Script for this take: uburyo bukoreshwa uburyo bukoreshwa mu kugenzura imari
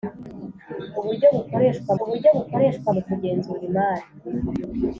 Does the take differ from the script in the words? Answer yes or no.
no